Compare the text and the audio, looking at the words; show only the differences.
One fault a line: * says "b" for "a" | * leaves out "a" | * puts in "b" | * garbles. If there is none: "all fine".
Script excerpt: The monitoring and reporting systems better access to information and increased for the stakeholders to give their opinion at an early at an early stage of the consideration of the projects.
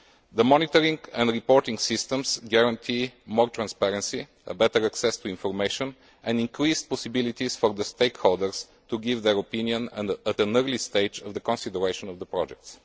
* puts in "guarantee more transparency"
* puts in "possibilities"
* leaves out "at an early"